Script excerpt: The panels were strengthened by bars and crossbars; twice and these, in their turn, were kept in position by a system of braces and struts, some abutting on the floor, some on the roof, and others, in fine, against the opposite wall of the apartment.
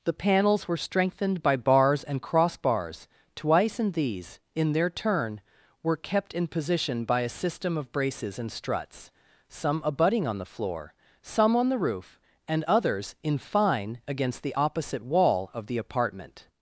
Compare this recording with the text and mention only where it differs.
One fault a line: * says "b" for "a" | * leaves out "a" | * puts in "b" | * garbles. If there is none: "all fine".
all fine